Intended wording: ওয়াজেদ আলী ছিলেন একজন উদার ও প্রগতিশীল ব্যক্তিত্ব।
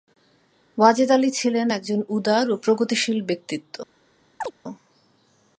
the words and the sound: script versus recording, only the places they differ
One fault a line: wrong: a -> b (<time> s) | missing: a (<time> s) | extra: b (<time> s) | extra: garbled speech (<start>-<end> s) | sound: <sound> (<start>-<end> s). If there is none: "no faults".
sound: chirp (4.4-4.5 s)